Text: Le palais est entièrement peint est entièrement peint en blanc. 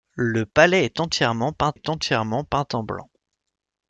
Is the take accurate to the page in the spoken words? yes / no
yes